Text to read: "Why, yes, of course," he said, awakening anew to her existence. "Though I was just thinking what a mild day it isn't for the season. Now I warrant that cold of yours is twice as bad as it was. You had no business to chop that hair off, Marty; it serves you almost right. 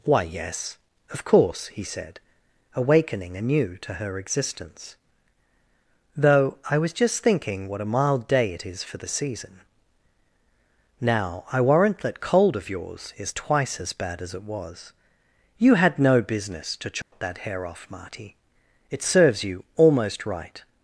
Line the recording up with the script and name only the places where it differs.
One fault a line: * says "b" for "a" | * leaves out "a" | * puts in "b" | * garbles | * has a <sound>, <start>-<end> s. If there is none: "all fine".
* says "is" for "isn't"
* has a dropout, 17.0-17.1 s